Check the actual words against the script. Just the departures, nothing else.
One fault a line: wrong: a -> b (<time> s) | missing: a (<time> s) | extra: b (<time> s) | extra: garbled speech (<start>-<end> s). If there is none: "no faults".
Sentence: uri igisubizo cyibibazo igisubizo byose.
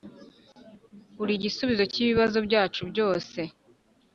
wrong: igisubizo -> byacu (2.5 s)